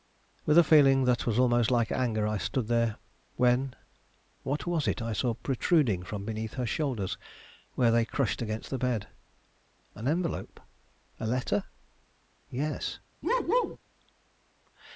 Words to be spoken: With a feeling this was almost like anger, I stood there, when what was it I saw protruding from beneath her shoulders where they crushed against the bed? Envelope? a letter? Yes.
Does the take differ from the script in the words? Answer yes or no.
yes